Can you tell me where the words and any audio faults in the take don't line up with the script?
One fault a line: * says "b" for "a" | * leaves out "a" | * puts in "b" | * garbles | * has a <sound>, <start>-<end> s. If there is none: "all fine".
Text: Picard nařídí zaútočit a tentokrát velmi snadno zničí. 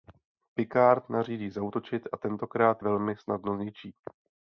all fine